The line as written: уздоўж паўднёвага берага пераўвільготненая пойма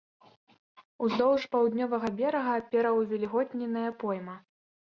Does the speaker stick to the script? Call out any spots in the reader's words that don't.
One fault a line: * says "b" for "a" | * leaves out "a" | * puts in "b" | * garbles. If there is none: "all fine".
all fine